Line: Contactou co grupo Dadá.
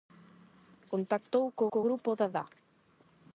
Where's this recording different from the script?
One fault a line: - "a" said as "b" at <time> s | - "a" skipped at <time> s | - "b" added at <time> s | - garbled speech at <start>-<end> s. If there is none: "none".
- "co" added at 1.7 s